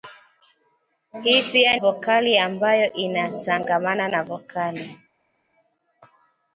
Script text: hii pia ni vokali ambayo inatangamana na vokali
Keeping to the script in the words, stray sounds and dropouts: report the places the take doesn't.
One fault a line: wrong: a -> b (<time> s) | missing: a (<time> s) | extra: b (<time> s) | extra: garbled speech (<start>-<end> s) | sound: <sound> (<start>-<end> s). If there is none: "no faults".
missing: ni (1.8 s)